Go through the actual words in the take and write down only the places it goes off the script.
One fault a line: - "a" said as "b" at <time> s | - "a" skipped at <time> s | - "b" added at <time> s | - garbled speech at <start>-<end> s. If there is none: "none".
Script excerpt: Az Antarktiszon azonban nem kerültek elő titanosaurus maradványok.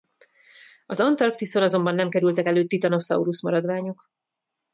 none